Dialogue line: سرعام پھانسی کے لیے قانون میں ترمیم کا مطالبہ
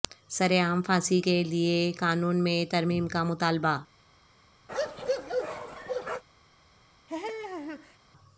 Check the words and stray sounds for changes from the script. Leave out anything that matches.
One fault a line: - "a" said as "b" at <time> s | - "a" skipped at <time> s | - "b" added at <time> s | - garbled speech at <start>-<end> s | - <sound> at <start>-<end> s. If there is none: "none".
- bark at 4.7-6.2 s
- laugh at 7.1-8.0 s